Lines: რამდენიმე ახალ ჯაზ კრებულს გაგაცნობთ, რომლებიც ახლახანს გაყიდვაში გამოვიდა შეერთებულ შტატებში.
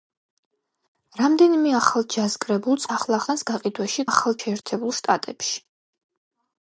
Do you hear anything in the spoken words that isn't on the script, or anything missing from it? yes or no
yes